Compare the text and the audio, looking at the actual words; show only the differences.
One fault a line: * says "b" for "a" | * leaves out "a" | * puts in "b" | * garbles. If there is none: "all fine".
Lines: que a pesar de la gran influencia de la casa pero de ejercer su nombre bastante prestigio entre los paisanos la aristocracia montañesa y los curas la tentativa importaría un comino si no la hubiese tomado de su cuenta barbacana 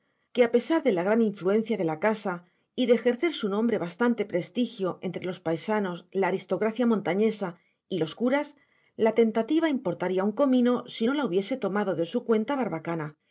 * says "y" for "pero"